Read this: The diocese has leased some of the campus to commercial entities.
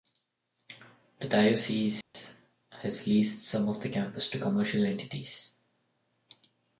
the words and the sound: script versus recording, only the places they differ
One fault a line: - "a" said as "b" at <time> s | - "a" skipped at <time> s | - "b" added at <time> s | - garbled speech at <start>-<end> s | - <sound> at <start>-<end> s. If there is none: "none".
- dropout at 2.0-2.1 s